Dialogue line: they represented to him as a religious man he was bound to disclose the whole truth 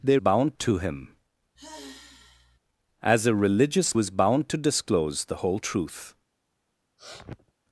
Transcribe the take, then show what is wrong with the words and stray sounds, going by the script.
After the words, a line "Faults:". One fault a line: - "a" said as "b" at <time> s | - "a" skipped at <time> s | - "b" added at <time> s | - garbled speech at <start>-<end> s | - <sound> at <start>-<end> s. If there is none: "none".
they bound to him as a religious was bound to disclose the whole truth
Faults:
- "represented" said as "bound" at 0.1 s
- sigh at 1.6-2.6 s
- "man he" skipped at 4.0 s
- sniff at 7.0-7.5 s